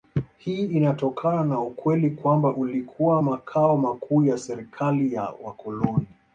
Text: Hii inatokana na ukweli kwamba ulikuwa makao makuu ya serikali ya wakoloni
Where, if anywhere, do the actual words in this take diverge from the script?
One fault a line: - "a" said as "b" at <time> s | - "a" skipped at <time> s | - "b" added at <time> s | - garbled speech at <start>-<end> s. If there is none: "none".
none